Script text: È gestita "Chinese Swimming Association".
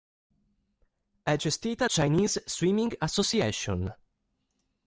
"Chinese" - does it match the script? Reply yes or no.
yes